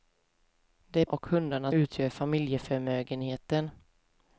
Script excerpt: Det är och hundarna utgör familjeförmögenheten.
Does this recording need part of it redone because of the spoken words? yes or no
no